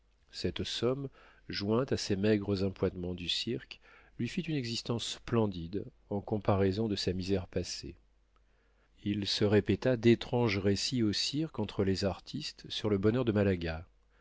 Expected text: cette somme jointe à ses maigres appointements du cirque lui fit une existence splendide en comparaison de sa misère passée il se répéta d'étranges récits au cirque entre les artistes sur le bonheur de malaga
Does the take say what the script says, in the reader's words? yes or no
yes